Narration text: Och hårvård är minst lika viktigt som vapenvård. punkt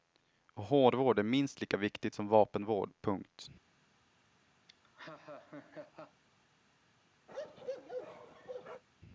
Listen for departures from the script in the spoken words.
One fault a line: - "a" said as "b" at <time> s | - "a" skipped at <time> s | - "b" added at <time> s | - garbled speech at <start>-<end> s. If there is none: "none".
none